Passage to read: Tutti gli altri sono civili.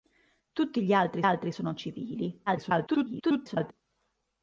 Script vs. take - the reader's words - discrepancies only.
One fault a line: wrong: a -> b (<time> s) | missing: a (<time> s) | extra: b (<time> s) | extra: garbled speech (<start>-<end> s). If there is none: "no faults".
extra: altri (1.2 s)
extra: garbled speech (2.5-3.7 s)